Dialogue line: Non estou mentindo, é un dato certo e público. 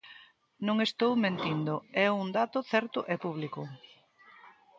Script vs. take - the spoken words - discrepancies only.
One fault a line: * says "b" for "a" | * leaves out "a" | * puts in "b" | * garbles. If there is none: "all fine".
all fine